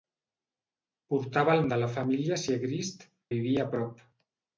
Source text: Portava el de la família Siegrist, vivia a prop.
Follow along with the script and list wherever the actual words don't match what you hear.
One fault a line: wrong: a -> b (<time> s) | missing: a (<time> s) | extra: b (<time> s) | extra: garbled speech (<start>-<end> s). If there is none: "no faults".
no faults